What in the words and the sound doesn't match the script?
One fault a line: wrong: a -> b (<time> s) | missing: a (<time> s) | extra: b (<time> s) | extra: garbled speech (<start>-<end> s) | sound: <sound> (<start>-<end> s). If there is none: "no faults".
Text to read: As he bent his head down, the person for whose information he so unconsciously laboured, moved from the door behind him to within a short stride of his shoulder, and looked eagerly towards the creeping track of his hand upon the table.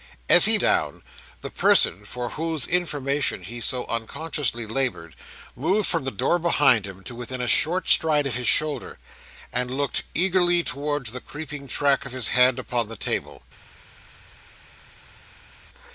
missing: bent his head (0.6 s)